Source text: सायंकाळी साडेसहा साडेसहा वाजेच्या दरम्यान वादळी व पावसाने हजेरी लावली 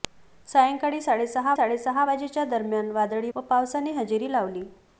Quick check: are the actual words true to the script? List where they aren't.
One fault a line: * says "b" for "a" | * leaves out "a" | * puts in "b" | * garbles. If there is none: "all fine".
all fine